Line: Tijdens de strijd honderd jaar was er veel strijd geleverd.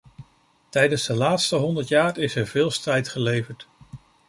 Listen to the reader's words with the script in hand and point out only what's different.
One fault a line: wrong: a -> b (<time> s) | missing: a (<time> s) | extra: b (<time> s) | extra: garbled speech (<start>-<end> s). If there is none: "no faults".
wrong: strijd -> laatste (1.1 s)
wrong: was -> is (2.2 s)